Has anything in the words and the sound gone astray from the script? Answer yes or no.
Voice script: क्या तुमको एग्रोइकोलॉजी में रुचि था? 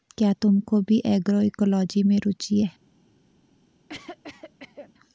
yes